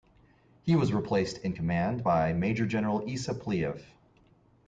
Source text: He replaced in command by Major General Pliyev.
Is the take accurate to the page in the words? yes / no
no